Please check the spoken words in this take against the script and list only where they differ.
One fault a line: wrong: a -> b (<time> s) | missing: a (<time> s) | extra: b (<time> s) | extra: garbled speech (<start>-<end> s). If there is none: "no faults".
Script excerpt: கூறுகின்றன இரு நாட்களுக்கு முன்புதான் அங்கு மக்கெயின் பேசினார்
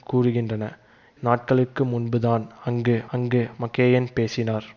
missing: இரு (0.7 s)
extra: அங்கு (3.1 s)